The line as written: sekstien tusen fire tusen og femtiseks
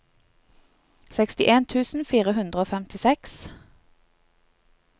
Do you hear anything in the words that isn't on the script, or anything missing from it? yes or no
yes